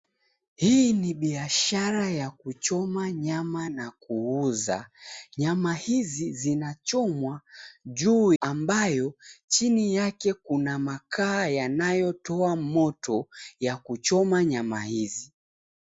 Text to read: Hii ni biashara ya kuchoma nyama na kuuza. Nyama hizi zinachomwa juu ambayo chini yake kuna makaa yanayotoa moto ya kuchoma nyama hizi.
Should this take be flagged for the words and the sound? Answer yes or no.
no